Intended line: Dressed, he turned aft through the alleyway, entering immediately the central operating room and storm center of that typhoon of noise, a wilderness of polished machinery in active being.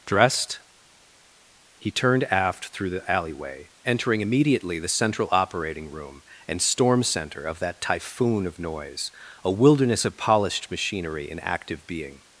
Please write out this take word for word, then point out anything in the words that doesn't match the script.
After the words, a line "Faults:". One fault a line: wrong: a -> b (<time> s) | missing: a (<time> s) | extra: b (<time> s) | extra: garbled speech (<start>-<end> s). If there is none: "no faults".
Dressed, he turned aft through the alleyway, entering immediately the central operating room and storm center of that typhoon of noise, a wilderness of polished machinery in active being.
Faults:
no faults